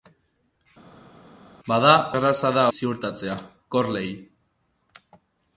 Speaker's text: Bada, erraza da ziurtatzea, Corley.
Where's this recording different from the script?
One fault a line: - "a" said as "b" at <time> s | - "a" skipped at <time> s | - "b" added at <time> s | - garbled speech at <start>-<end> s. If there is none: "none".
none